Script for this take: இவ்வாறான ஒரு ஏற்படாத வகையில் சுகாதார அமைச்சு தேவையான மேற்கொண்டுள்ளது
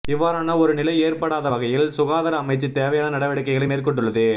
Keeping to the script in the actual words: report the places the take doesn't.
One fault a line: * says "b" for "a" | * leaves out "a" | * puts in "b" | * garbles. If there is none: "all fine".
* puts in "நிலை"
* puts in "நடவடிக்கைகளை"